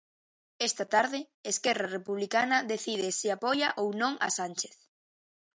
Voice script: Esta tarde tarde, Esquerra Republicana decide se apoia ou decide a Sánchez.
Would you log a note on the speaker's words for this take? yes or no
yes